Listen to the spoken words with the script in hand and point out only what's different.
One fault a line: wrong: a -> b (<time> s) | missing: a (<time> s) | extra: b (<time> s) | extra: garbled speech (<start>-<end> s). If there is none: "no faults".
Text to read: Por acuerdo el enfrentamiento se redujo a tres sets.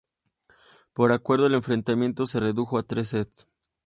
no faults